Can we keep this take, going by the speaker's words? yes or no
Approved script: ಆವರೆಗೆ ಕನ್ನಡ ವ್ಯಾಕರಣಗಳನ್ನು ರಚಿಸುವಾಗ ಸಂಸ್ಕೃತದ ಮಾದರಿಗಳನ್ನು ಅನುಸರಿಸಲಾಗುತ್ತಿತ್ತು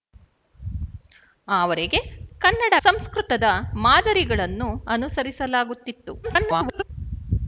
no